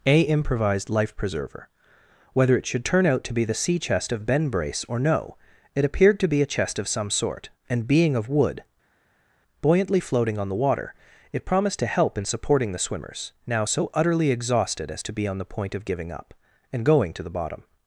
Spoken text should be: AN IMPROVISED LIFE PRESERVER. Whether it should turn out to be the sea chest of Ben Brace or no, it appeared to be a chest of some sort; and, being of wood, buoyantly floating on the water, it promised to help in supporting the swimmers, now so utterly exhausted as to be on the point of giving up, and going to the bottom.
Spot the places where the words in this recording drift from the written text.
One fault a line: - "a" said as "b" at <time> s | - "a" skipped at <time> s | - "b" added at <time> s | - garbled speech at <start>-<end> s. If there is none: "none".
- "AN" said as "A" at 0.1 s